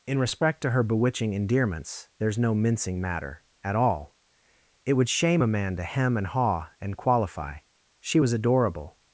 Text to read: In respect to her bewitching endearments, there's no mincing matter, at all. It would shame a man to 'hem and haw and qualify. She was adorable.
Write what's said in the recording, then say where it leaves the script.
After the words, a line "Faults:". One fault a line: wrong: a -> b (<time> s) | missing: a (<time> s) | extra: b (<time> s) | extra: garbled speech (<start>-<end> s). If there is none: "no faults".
In respect to her bewitching endearments, there's no mincing matter, at all. It would shame a man to 'hem and haw and qualify. She was adorable.
Faults:
no faults